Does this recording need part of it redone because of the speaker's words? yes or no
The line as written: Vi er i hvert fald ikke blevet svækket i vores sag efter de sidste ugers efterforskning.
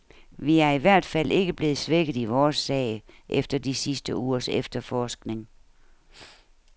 no